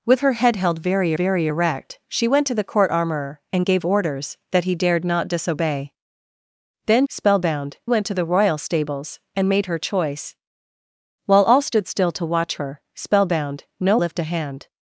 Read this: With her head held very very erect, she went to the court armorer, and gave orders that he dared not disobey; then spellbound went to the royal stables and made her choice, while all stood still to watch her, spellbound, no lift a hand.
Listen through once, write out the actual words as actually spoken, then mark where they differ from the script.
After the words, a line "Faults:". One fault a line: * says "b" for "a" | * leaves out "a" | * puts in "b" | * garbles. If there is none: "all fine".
With her head held very very erect, she went to the court armorer, and gave orders that he dared not disobey; then spellbound went to the royal stables and made her choice, while all stood still to watch her, spellbound, no lift a hand.
Faults:
all fine